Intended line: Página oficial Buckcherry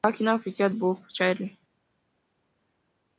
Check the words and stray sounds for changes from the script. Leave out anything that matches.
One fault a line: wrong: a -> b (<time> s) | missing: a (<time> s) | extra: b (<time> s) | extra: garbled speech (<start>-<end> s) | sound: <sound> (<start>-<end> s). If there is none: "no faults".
no faults